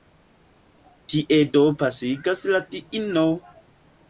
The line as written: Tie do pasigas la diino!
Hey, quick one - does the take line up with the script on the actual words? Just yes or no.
yes